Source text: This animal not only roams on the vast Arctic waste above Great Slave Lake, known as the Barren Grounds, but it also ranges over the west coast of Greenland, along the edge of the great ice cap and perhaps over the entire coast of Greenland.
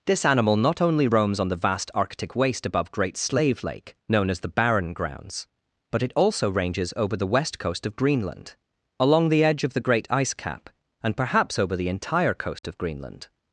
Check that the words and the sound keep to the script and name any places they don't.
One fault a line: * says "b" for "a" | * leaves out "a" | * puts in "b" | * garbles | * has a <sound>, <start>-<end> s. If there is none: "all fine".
* has a dropout, 12.6-12.6 s